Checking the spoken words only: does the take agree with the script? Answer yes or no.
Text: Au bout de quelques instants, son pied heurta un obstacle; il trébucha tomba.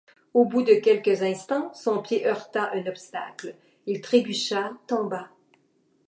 yes